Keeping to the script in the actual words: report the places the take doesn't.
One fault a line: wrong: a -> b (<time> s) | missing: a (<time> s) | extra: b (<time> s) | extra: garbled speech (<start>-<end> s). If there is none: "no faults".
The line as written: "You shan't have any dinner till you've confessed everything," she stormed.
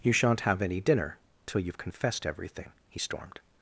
wrong: she -> he (2.9 s)